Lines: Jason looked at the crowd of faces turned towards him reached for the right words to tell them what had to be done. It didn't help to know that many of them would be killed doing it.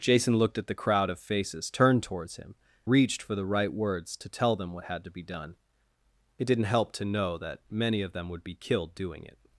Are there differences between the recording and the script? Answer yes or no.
no